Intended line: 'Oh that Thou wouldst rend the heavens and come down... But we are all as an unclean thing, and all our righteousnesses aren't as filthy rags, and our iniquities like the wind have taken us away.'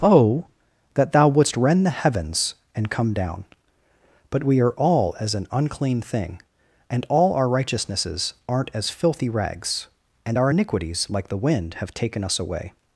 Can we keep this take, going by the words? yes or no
yes